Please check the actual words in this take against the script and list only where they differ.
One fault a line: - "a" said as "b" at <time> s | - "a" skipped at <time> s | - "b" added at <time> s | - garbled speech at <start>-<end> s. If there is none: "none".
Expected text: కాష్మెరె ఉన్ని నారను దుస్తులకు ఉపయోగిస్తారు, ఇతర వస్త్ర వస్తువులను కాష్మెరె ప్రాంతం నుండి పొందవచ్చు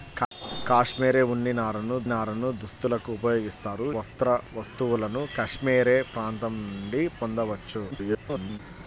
- "నారను" added at 2.1 s
- "ఇతర" skipped at 3.9 s
- garbled speech at 7.9-8.6 s